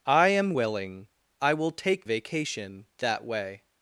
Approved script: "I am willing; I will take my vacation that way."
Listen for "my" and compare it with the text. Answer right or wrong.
wrong